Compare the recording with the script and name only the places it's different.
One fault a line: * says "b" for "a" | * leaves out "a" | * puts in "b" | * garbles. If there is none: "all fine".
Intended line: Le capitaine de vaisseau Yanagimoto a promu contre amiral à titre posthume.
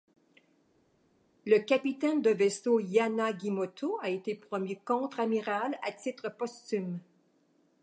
* puts in "été"